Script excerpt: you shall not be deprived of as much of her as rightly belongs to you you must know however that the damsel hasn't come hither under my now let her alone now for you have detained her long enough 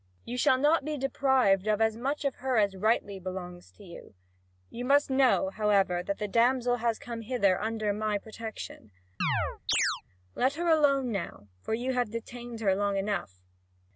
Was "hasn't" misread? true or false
true